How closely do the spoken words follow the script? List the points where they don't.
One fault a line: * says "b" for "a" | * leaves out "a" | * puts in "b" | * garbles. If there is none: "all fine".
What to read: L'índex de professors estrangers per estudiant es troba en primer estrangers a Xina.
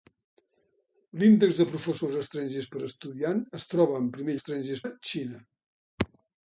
all fine